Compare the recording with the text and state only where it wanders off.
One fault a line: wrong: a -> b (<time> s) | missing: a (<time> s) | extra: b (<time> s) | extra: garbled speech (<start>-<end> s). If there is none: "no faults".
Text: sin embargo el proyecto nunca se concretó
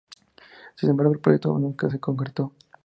no faults